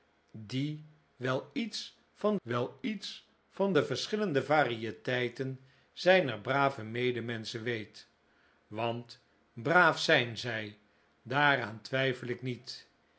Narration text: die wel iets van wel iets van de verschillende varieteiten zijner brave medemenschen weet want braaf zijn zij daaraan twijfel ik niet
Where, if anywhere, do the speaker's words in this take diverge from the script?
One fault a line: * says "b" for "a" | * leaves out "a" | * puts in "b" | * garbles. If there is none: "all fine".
all fine